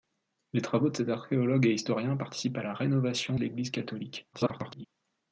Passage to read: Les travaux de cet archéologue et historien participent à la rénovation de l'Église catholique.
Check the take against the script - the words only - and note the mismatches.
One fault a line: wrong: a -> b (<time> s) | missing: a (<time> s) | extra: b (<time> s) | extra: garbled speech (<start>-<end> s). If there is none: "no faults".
missing: de (3.4 s)
extra: garbled speech (4.3-4.9 s)